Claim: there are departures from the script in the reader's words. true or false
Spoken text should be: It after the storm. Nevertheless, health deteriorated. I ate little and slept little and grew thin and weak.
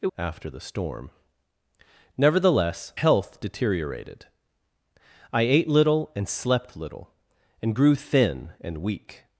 false